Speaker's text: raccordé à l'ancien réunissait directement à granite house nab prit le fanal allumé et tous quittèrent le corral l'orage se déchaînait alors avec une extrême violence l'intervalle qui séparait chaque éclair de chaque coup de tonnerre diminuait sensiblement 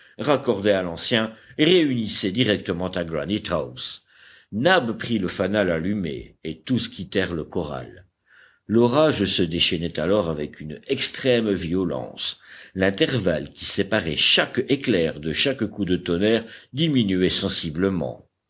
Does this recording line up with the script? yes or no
yes